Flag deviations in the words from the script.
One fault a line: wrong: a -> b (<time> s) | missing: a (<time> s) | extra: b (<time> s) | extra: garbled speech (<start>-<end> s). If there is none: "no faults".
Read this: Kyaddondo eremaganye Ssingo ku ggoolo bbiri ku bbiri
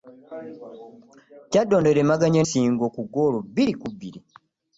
no faults